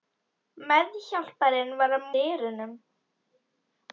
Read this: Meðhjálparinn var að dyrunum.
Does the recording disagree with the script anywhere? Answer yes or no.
no